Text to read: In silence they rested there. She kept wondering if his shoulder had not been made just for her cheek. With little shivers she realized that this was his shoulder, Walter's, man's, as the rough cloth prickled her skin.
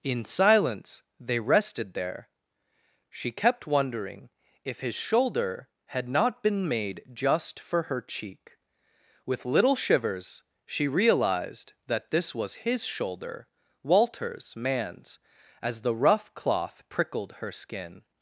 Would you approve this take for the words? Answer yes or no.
yes